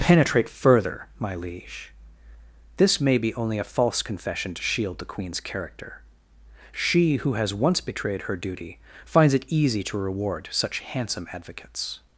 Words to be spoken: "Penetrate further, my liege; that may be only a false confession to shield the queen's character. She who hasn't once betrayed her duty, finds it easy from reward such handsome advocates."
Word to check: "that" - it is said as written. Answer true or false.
false